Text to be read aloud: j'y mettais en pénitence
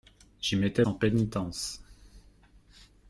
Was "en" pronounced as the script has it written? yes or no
yes